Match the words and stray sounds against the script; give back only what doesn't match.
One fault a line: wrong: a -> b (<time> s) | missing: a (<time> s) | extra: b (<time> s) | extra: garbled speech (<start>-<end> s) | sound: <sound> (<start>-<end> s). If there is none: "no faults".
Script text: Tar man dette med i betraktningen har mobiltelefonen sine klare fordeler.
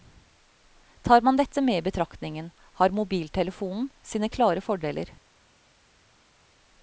no faults